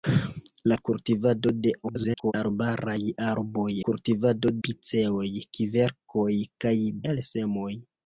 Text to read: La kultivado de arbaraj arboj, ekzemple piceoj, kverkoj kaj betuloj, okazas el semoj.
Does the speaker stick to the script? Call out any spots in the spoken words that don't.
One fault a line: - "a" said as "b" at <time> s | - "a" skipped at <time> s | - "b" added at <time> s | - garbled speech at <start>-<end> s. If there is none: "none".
- garbled speech at 1.8-2.3 s
- "ekzemple" said as "kultivado" at 3.9 s
- "betuloj okazas" skipped at 6.7 s